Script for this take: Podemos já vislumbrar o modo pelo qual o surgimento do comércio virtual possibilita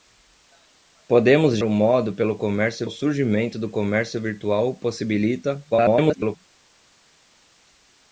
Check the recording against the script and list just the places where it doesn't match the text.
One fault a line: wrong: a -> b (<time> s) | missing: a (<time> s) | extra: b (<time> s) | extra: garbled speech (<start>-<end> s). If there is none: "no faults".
missing: já vislumbrar (1.6 s)
wrong: qual -> comércio (2.4 s)
extra: garbled speech (5.7-6.4 s)